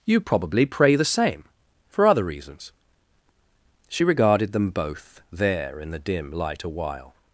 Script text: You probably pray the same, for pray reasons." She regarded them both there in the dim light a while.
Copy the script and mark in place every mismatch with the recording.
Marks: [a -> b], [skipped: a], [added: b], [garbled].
You probably pray the same, for [pray -> other] reasons." She regarded them both there in the dim light a while.